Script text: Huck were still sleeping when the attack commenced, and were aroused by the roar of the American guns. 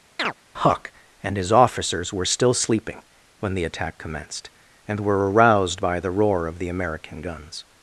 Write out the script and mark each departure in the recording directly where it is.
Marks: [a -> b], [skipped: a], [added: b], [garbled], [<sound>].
[chirp] Huck [added: and his officers] were still sleeping when the attack commenced, and were aroused by the roar of the American guns.